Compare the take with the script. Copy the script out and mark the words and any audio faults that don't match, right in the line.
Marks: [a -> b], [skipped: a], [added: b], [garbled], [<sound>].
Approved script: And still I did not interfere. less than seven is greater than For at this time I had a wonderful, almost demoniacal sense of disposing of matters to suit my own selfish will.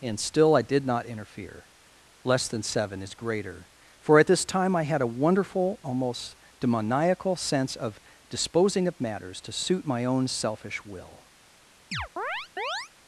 And still I did not interfere. less than seven is greater [skipped: than] For at this time I had a wonderful, almost demoniacal sense of disposing of matters to suit my own selfish will. [chirp]